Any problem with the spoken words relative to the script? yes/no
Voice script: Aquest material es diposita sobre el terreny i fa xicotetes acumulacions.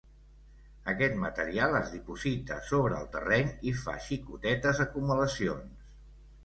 no